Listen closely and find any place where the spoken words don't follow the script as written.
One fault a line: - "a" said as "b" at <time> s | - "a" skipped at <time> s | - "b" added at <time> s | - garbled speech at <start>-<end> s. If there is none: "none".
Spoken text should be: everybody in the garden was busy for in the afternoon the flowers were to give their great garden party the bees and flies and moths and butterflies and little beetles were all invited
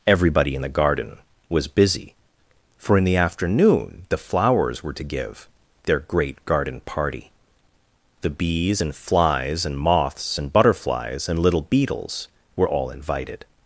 none